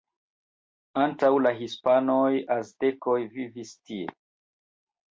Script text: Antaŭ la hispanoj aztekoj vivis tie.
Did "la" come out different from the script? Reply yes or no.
no